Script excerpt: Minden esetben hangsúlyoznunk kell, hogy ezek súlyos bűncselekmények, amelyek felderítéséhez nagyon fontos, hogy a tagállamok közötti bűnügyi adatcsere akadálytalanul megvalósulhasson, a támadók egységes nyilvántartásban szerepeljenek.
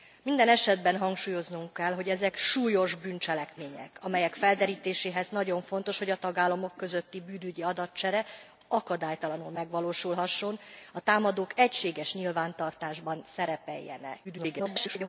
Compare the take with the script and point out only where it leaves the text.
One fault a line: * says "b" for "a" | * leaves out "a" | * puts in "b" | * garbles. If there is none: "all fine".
* garbles